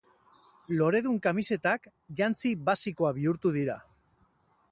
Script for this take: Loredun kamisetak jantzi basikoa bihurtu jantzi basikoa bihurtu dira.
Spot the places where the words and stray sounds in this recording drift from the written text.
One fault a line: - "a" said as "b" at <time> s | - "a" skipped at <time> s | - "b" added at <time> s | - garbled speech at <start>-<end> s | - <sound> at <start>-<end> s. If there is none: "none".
- "jantzi basikoa bihurtu" skipped at 3.5 s